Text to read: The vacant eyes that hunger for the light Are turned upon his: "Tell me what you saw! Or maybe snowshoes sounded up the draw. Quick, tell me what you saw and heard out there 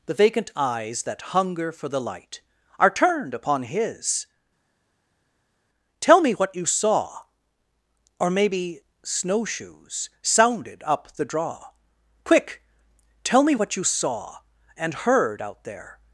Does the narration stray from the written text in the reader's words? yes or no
no